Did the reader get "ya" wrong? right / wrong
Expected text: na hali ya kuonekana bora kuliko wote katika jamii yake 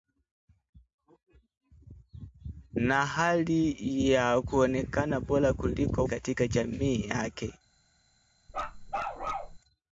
right